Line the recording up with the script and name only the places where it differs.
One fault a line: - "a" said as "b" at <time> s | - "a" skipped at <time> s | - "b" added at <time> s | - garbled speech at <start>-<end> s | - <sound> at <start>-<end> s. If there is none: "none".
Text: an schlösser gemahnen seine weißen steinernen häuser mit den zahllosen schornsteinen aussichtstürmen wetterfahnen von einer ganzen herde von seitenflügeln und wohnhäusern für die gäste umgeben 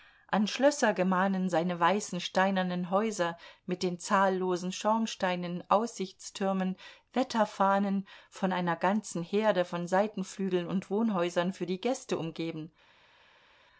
none